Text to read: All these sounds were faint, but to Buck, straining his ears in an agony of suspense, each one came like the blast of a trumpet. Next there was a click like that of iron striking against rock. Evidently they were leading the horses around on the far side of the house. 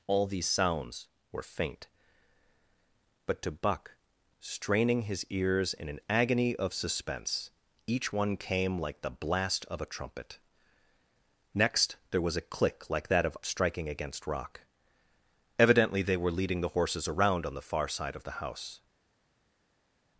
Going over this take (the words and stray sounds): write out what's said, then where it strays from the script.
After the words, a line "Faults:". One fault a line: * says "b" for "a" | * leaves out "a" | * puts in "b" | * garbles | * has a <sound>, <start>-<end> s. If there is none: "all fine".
All these sounds were faint, but to Buck, straining his ears in an agony of suspense, each one came like the blast of a trumpet. Next there was a click like that of striking against rock. Evidently they were leading the horses around on the far side of the house.
Faults:
* leaves out "iron"